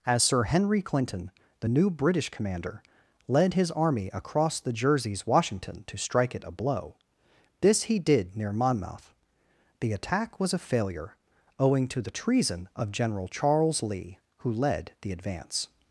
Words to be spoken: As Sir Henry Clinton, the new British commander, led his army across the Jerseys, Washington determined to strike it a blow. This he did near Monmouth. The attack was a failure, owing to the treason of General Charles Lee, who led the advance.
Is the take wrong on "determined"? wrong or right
wrong